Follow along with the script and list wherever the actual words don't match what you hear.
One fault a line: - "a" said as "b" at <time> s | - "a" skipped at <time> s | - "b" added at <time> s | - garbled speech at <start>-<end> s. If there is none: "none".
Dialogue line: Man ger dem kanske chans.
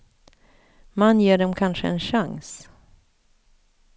- "en" added at 1.9 s